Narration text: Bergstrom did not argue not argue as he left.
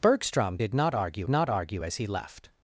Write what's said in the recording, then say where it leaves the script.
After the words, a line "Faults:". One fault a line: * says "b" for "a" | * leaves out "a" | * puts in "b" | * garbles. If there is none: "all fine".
Bergstrom did not argue not argue as he left.
Faults:
all fine